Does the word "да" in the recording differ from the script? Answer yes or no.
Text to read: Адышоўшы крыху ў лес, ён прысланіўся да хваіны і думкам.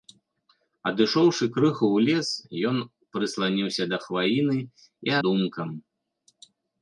no